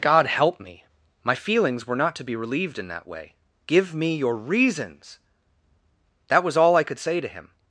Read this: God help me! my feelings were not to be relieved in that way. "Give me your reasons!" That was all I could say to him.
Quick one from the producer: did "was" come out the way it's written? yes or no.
yes